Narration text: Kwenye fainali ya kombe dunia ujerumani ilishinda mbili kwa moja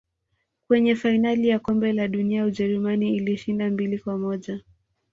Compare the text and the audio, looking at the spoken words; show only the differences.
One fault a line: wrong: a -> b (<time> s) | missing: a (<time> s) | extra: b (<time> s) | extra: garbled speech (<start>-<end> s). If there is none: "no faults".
extra: la (1.9 s)